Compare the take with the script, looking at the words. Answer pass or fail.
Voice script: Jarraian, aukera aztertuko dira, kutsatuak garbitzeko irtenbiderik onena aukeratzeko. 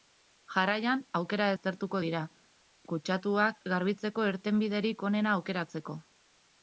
pass